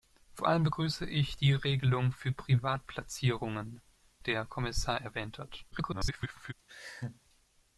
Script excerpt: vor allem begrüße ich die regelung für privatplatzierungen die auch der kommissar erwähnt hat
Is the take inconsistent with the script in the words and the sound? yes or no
yes